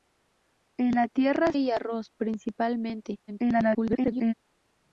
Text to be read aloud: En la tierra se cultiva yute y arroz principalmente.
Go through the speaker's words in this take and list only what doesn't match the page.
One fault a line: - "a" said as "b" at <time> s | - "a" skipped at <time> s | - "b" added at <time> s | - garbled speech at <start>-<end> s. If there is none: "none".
- "se cultiva yute" skipped at 1.5 s
- garbled speech at 3.3-4.3 s